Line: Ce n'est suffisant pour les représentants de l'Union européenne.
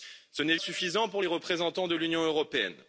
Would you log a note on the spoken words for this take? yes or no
no